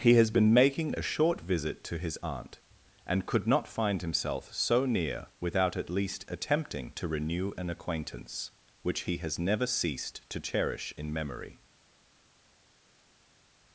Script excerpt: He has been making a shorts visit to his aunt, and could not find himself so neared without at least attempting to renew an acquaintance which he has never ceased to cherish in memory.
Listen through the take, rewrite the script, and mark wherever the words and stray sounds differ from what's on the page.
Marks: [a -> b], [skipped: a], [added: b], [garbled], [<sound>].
He has been making a [shorts -> short] visit to his aunt, and could not find himself so [neared -> near] without at least attempting to renew an acquaintance which he has never ceased to cherish in memory.